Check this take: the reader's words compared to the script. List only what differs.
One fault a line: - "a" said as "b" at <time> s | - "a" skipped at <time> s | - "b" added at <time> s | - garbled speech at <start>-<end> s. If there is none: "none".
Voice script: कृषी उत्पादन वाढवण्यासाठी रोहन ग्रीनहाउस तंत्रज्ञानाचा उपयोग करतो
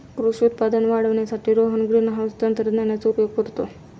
none